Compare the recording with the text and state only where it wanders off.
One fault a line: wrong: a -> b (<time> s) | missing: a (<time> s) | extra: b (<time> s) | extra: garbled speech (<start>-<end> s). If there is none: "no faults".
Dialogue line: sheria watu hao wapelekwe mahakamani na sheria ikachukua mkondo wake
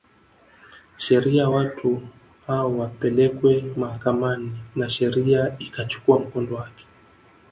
no faults